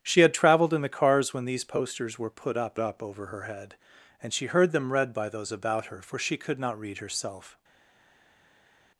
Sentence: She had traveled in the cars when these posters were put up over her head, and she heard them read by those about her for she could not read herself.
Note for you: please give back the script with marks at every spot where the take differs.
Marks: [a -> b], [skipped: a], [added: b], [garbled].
She had traveled in the cars when these posters were put up [added: up] over her head, and she heard them read by those about her for she could not read herself.